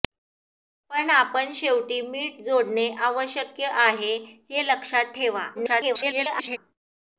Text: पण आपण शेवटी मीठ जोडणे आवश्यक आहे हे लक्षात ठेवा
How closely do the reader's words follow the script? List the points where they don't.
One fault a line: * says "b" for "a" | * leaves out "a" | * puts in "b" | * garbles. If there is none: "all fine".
* garbles